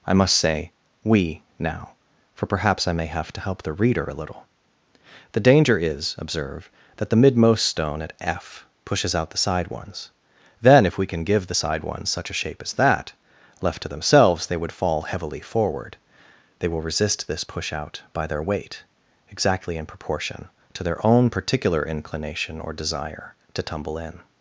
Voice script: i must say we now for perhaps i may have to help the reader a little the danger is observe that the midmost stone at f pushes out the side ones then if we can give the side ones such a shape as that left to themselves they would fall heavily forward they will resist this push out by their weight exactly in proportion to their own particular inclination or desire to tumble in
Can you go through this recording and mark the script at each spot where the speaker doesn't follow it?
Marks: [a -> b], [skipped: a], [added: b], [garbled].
i must say we now for perhaps i may have to help the reader a little the danger is observe that the midmost stone at f pushes out the side ones then if we can give the side ones such a shape as that left to themselves they would fall heavily forward they will resist this push out by their weight exactly in proportion to their own particular inclination or desire to tumble in